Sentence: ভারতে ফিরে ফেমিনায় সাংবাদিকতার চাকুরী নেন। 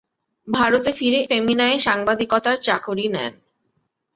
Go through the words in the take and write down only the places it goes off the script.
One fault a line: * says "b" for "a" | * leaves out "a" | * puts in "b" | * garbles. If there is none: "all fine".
all fine